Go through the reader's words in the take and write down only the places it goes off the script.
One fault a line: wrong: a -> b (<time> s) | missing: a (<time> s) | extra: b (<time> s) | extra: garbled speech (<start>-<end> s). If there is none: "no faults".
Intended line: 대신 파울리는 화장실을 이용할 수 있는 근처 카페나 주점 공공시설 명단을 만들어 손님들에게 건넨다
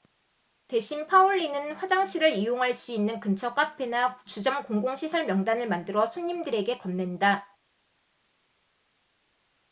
no faults